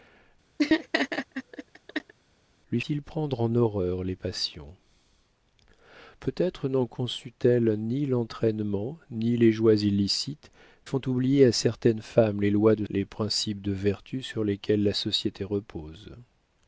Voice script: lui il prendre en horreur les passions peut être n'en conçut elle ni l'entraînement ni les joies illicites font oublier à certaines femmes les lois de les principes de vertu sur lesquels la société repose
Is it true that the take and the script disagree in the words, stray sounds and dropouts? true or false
true